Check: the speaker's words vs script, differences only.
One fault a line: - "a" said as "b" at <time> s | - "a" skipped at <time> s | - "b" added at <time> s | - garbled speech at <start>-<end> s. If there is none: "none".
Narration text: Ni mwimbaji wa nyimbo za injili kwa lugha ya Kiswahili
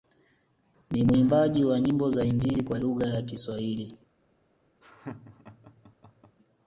none